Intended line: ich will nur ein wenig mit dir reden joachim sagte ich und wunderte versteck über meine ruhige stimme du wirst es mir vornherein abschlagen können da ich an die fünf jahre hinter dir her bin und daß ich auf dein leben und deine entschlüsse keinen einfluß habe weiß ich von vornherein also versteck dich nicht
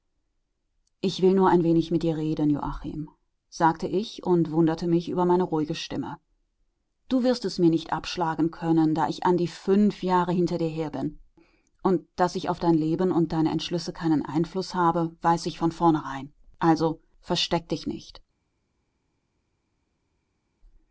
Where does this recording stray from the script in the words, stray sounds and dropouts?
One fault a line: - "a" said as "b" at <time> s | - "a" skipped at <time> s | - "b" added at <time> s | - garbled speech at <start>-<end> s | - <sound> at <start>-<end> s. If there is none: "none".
- "versteck" said as "mich" at 4.9 s
- "vornherein" said as "nicht" at 7.7 s